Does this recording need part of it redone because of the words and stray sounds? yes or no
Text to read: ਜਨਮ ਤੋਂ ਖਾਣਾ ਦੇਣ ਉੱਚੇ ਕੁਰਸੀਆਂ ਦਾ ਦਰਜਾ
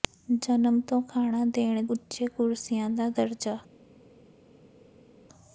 no